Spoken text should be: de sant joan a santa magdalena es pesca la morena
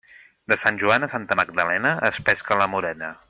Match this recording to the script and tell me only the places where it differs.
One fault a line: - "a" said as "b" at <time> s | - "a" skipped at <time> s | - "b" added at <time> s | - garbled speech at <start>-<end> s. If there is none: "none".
none